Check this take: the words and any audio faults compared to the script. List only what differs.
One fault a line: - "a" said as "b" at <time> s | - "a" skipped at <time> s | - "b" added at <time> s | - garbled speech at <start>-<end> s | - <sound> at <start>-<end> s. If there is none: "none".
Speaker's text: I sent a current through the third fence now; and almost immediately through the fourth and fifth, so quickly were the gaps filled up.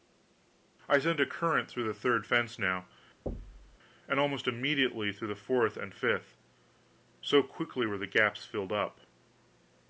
- thud at 3.3-3.8 s